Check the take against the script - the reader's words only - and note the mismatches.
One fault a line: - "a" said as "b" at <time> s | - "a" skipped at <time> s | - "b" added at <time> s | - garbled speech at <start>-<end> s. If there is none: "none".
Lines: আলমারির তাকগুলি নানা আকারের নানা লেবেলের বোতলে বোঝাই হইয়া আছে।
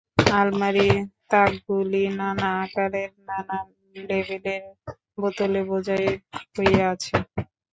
none